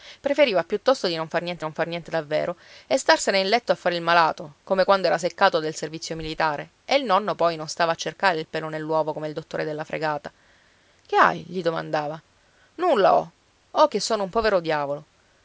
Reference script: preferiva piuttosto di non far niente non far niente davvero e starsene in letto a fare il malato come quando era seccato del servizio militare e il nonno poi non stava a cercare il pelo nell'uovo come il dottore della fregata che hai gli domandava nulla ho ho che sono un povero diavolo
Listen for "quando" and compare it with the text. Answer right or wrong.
right